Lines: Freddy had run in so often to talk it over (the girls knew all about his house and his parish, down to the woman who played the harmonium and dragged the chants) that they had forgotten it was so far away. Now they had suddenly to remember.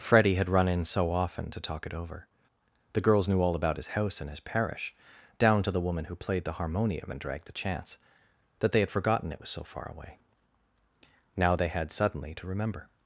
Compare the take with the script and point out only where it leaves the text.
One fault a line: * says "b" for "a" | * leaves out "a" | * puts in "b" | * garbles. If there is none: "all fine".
all fine